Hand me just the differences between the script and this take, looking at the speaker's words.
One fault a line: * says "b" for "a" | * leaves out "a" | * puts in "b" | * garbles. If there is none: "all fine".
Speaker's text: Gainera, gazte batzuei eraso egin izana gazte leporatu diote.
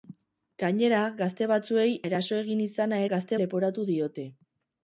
all fine